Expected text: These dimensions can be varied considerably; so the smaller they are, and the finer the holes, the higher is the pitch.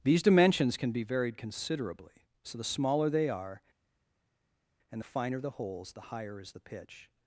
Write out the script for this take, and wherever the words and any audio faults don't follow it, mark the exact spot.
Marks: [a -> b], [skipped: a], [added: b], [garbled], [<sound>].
These dimensions can be varied considerably; so the smaller they are, and the finer the holes, the higher is the pitch.